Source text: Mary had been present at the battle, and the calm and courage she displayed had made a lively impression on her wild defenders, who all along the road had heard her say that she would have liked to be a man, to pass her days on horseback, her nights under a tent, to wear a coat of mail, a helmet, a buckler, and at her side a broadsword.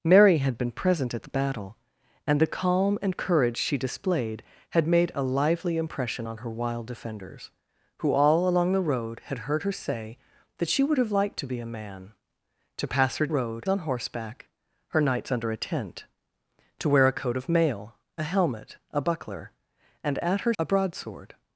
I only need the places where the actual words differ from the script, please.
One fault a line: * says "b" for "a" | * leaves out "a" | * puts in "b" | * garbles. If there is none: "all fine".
* says "road" for "days"
* leaves out "side"